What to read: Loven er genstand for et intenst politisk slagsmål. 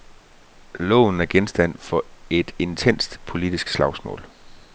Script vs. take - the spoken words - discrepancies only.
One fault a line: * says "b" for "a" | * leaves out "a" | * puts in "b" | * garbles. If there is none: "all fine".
all fine